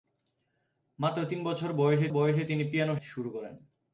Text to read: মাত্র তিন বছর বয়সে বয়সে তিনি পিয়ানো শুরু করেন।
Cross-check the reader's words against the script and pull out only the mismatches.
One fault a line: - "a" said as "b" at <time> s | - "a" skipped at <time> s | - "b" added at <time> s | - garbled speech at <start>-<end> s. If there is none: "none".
none